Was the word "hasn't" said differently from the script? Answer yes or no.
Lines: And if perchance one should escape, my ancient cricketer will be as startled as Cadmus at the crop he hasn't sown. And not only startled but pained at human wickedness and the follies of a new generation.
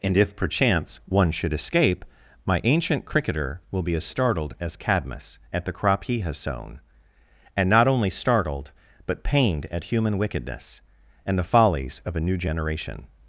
yes